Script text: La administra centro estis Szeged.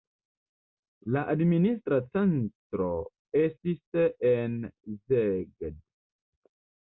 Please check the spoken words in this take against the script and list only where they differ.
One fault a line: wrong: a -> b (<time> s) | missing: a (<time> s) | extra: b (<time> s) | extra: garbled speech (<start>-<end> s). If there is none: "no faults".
extra: en (4.3 s)